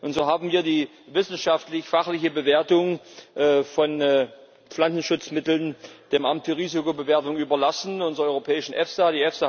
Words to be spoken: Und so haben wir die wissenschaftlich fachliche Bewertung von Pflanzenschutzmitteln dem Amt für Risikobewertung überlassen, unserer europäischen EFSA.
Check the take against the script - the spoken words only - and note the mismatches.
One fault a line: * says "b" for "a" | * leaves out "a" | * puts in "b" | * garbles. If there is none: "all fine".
all fine